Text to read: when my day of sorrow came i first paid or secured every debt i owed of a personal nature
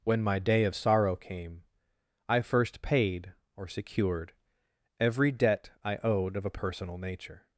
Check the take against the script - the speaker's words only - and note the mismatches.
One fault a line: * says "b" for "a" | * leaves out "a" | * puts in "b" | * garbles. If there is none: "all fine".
all fine